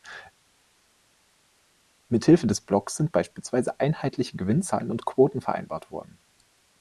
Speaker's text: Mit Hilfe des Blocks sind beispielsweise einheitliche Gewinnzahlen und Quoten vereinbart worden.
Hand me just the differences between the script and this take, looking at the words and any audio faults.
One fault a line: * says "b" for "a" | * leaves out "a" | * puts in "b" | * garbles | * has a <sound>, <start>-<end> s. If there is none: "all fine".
all fine